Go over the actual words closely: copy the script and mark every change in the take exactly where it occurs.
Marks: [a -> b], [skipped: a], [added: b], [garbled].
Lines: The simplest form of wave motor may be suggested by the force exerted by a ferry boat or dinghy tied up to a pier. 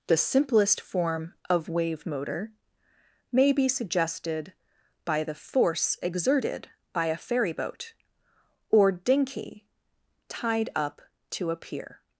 The simplest form of wave motor may be suggested by the force exerted by a ferry boat or dinghy tied up to a pier.